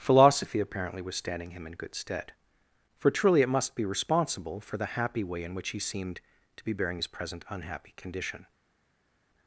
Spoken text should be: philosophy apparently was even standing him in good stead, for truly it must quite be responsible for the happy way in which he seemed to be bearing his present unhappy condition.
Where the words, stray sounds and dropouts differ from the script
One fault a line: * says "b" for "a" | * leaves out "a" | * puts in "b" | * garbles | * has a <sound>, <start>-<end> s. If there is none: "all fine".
* leaves out "even"
* leaves out "quite"